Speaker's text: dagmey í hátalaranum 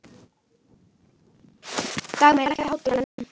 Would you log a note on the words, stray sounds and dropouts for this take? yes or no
yes